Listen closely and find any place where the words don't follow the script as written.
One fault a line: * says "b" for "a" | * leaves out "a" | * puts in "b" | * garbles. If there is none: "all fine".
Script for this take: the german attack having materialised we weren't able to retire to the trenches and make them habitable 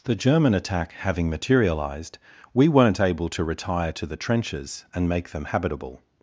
all fine